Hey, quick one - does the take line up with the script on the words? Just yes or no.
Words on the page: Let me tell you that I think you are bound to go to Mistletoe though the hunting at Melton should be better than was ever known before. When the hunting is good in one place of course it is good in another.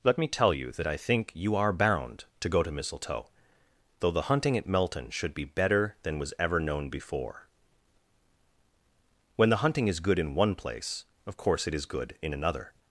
yes